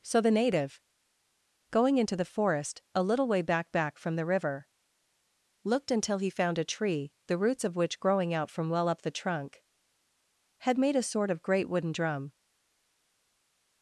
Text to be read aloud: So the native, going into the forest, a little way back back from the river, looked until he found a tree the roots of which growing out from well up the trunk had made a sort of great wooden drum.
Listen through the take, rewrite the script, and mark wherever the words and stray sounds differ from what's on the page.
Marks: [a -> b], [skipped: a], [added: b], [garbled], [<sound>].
So the native, going into the forest, a little way back back from the river, looked until he found a tree the roots of which growing out from well up the trunk had made a sort of great wooden drum.